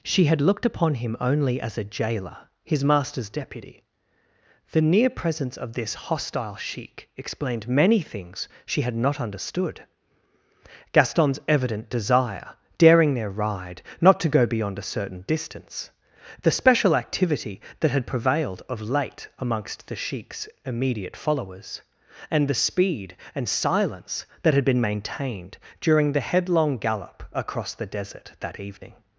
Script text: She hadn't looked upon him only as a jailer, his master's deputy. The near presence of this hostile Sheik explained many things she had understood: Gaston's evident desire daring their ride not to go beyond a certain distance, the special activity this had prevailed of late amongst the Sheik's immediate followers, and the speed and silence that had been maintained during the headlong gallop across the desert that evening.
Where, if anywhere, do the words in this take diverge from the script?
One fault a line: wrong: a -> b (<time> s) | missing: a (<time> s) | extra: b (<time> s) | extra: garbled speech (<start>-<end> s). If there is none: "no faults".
wrong: hadn't -> had (0.2 s)
extra: not (8.9 s)
wrong: this -> that (17.8 s)